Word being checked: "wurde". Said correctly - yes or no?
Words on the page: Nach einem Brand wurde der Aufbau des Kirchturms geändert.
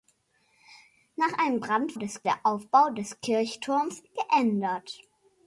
no